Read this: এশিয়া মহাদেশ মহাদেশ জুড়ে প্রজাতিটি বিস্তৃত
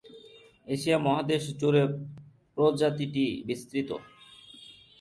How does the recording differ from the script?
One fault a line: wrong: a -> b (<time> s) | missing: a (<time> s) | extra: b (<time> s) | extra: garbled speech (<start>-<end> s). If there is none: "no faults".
missing: মহাদেশ (1.4 s)